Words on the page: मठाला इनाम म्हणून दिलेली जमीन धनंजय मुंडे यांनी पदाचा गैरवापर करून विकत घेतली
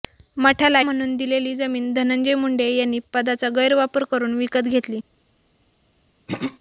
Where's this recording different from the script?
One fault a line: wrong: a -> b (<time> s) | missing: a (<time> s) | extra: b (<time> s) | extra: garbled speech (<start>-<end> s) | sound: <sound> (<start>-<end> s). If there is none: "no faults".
missing: इनाम (0.8 s)
sound: throat clearing (6.3-6.6 s)